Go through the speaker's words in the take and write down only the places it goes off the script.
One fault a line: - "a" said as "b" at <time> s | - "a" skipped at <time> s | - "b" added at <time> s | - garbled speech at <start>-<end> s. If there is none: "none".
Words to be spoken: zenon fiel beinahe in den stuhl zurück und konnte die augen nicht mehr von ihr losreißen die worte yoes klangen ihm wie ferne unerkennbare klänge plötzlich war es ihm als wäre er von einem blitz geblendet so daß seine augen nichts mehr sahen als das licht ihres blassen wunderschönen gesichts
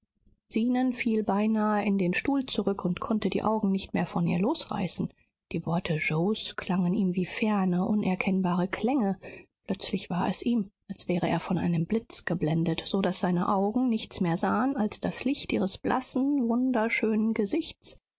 none